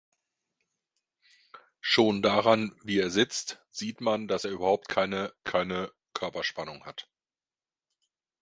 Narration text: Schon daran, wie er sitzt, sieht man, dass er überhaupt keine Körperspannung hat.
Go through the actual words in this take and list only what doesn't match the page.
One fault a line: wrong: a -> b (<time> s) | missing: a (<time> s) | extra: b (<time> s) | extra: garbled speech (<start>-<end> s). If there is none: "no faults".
extra: keine (5.4 s)